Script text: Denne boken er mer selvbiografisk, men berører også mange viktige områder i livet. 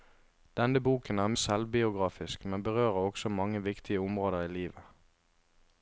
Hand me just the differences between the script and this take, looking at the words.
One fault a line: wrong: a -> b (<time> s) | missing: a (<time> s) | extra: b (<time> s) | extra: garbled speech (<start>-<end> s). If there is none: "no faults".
missing: mer (1.3 s)